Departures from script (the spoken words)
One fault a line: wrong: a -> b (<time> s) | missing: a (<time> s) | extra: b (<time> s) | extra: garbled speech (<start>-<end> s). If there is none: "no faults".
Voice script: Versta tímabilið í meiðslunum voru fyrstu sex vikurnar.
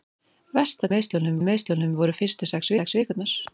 wrong: tímabilið -> meiðslunum (0.9 s)
extra: sex (2.8 s)